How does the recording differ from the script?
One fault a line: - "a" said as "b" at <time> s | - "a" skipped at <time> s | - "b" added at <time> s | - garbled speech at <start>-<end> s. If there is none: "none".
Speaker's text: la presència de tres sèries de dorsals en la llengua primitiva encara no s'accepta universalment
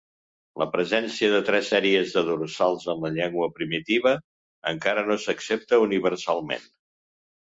none